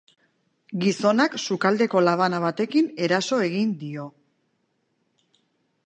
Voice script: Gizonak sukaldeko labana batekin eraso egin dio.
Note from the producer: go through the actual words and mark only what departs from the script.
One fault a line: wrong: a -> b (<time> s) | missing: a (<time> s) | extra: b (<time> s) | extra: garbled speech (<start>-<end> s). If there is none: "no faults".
no faults